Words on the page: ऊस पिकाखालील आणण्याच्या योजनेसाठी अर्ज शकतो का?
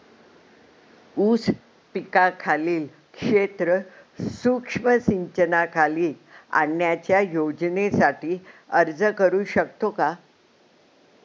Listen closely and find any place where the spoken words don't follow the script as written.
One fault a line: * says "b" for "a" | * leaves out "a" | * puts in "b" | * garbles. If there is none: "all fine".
* puts in "क्षेत्र सूक्ष्म सिंचनाखाली"
* puts in "करू"